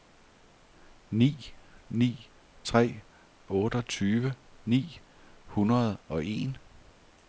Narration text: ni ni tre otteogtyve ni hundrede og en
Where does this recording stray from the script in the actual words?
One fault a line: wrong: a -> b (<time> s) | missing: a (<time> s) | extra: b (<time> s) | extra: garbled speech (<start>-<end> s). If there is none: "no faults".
no faults